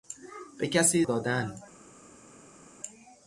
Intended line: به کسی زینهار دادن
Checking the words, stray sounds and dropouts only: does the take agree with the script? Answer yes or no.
no